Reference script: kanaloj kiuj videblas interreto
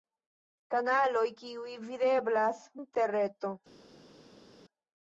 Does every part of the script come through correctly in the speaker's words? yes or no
yes